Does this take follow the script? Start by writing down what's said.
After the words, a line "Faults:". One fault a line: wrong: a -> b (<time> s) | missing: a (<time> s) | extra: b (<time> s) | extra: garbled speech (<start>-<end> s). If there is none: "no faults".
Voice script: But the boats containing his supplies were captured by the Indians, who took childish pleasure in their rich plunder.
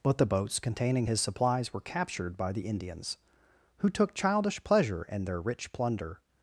But the boats containing his supplies were captured by the Indians, who took childish pleasure in their rich plunder.
Faults:
no faults